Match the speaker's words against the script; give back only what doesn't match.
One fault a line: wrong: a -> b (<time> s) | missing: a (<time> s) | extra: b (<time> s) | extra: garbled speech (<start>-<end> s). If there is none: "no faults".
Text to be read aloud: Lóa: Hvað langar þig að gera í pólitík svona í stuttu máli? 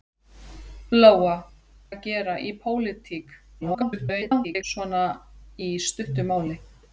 missing: Hvað langar þig (1.3 s)
extra: garbled speech (3.6-4.6 s)